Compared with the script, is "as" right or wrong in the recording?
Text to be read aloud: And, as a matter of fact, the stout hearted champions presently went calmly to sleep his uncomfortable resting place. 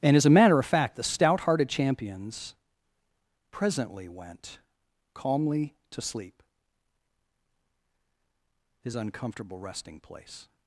right